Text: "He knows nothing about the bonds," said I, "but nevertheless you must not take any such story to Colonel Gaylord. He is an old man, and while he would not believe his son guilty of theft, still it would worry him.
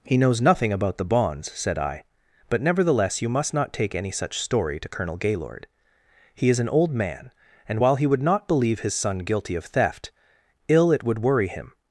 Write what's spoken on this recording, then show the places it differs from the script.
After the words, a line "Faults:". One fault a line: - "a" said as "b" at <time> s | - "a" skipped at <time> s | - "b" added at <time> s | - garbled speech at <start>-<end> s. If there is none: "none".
"He knows nothing about the bonds," said I, "but nevertheless you must not take any such story to Colonel Gaylord. He is an old man, and while he would not believe his son guilty of theft, ill it would worry him.
Faults:
- "still" said as "ill" at 10.7 s